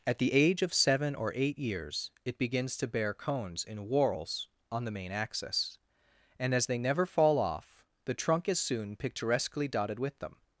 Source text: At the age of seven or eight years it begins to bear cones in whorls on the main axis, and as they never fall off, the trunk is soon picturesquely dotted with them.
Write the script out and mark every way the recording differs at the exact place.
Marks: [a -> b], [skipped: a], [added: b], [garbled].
At the age of seven or eight years it begins to bear cones in whorls on the main axis, and as they never fall off, the trunk is soon picturesquely dotted with them.